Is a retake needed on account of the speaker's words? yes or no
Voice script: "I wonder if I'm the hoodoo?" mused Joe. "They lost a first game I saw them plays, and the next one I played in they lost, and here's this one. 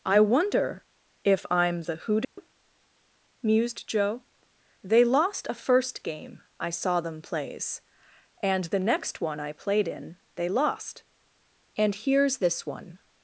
no